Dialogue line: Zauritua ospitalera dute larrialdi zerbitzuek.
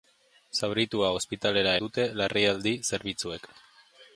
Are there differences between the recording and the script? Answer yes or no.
no